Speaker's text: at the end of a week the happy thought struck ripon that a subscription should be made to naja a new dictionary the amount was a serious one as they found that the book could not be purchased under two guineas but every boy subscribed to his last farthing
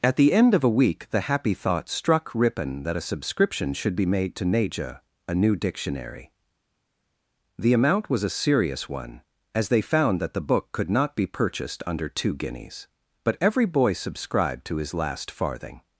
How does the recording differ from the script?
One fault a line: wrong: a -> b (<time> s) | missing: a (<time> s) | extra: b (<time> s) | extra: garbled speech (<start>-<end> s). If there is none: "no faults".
no faults